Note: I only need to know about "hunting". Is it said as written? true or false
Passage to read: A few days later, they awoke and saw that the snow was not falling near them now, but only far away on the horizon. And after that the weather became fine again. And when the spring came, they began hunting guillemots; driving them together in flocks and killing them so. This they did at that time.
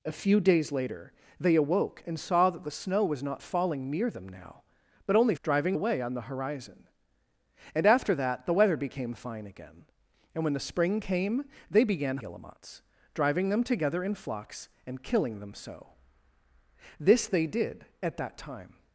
false